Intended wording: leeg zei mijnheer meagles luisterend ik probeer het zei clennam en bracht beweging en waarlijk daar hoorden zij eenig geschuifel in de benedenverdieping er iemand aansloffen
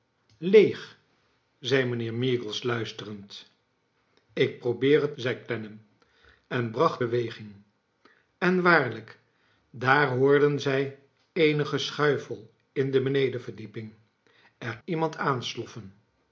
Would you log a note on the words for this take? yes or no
no